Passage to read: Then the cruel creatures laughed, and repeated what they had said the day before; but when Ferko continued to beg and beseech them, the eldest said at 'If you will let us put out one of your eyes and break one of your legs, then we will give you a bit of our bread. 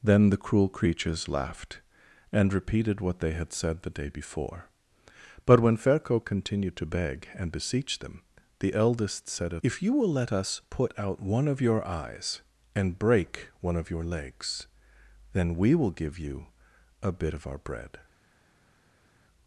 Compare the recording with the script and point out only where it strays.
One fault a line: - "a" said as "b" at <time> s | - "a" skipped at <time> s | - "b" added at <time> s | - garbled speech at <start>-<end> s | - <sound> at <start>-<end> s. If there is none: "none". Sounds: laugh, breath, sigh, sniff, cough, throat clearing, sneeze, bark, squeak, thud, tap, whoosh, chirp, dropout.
none